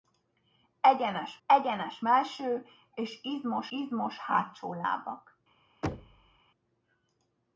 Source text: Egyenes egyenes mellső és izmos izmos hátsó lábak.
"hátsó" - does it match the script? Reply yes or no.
yes